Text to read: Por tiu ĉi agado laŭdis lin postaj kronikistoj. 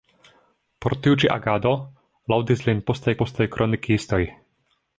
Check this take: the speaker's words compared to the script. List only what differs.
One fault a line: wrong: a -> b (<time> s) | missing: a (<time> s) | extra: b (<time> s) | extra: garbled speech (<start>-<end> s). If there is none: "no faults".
extra: postaj (3.2 s)